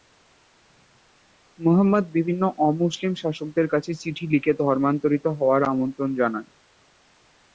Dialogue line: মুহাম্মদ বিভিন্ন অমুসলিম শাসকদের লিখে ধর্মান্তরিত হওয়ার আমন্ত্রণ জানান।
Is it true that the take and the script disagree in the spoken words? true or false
true